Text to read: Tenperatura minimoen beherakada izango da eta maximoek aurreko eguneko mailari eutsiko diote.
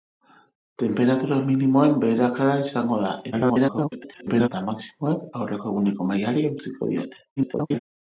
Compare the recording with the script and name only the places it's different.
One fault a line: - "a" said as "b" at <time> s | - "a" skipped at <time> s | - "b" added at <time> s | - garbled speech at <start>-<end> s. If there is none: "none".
- garbled speech at 3.3-4.5 s
- garbled speech at 7.4-7.8 s